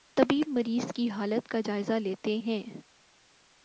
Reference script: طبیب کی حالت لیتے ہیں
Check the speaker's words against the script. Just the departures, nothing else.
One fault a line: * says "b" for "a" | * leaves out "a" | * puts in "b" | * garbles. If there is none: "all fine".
* puts in "مریض"
* puts in "کا جائزہ"